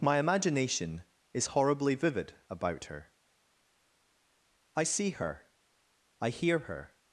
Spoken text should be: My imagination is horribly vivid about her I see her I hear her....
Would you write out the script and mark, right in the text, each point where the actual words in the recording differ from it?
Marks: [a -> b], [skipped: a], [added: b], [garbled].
My imagination is horribly vivid about her I see her I hear her....